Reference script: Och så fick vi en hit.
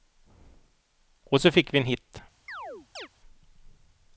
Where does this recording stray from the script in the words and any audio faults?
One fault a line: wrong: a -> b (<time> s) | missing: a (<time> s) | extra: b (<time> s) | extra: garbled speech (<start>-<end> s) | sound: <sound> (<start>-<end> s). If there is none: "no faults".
sound: chirp (2.5-3.1 s)